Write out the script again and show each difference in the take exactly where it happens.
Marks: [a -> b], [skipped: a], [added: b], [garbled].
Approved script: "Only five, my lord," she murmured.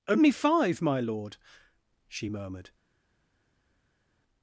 "Only five, my lord," she murmured.